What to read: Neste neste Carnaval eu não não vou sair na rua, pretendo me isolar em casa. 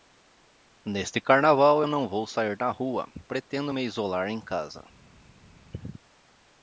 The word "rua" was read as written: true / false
true